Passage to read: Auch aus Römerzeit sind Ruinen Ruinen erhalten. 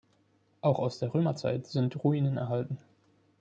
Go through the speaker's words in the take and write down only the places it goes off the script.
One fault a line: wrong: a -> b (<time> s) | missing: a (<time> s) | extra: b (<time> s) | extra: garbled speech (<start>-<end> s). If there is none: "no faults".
extra: der (1.0 s)
missing: Ruinen (2.4 s)